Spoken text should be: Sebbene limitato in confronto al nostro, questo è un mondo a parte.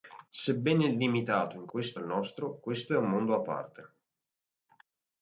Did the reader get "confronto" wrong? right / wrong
wrong